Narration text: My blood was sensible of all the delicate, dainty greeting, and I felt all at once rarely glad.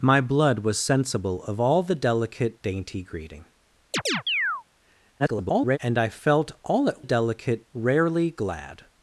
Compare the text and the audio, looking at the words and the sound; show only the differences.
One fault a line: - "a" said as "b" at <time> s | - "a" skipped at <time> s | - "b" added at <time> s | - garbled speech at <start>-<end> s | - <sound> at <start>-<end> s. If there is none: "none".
- chirp at 3.9-4.6 s
- garbled speech at 5.2-5.8 s
- "once" said as "delicate" at 7.0 s